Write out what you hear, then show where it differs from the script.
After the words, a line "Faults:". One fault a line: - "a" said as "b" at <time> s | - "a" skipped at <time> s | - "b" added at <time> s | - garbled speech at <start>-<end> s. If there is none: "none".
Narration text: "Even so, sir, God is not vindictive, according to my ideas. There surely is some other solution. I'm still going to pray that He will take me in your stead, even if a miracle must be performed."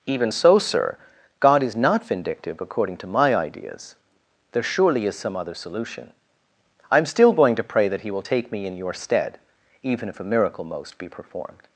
"Even so, sir, God is not vindictive, according to my ideas. There surely is some other solution. I'm still going to pray that He will take me in your stead, even if a miracle most be performed."
Faults:
- "must" said as "most" at 10.6 s